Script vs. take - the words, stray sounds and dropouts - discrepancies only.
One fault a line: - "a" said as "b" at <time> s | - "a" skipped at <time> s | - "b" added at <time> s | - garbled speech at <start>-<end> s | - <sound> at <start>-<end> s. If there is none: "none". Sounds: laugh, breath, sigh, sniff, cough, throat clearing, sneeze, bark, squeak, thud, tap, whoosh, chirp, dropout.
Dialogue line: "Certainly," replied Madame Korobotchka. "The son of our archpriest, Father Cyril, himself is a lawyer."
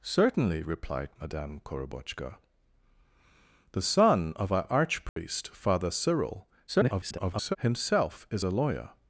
- dropout at 5.1-5.2 s
- garbled speech at 6.7-7.6 s